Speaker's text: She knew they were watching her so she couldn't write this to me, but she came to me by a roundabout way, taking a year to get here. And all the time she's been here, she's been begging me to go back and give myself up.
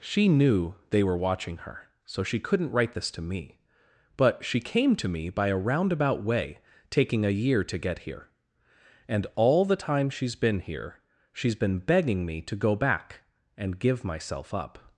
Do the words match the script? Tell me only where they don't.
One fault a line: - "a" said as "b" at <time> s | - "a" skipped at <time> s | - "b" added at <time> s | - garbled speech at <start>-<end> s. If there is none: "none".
none